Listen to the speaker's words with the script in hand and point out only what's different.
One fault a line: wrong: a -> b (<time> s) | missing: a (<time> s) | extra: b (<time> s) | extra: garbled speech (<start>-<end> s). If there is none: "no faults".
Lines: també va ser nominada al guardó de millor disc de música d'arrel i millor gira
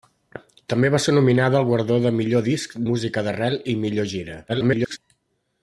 missing: de (2.8 s)
extra: garbled speech (4.5-5.0 s)